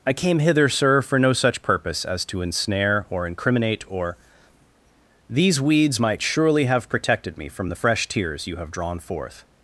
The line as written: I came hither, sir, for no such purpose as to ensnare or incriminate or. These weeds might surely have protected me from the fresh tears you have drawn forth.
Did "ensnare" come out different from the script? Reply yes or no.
no